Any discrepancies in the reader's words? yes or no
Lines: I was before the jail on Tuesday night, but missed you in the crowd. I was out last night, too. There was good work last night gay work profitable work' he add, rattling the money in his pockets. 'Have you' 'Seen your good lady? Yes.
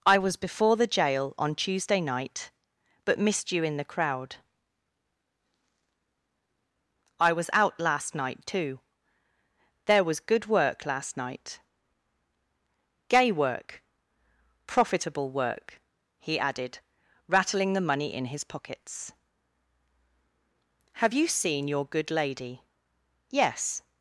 yes